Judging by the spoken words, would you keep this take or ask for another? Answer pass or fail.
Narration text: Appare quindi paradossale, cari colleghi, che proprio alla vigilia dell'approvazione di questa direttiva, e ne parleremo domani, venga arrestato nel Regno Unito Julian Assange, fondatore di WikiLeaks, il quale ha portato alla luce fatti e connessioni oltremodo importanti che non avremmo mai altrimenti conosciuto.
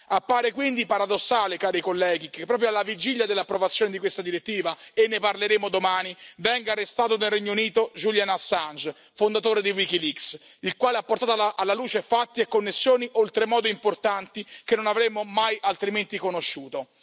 pass